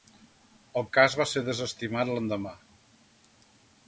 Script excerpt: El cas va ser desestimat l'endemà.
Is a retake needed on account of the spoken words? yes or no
no